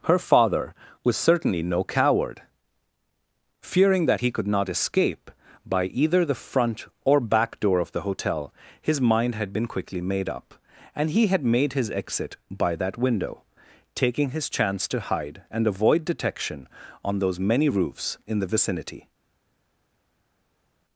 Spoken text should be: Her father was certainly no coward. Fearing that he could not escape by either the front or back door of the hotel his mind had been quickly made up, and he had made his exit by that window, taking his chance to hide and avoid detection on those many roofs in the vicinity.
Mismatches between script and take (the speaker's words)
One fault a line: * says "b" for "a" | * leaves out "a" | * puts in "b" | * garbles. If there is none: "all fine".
all fine